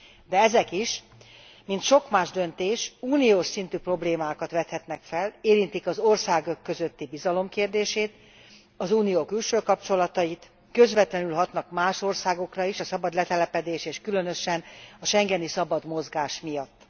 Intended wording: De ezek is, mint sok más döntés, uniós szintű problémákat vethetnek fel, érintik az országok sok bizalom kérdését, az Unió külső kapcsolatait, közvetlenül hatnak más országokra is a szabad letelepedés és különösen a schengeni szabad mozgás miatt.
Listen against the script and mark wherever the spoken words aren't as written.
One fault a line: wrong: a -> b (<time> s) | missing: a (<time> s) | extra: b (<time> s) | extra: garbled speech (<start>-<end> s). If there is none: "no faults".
wrong: sok -> közötti (6.6 s)